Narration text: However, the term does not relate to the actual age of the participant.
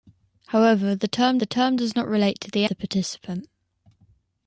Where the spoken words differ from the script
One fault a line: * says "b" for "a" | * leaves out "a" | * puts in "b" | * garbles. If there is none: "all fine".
* puts in "the term"
* leaves out "actual age of"